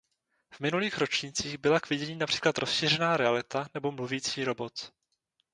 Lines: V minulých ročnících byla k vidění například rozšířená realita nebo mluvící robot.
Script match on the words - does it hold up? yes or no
yes